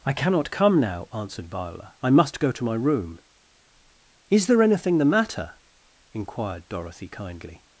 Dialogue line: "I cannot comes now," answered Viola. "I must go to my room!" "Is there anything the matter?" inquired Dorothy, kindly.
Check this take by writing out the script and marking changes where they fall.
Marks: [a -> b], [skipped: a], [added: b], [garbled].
"I cannot [comes -> come] now," answered Viola. "I must go to my room!" "Is there anything the matter?" inquired Dorothy, kindly.